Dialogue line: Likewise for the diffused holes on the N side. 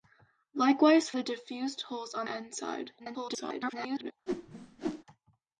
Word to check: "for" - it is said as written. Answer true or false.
false